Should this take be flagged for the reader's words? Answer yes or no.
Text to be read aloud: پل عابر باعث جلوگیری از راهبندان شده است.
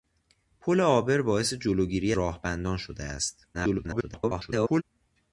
yes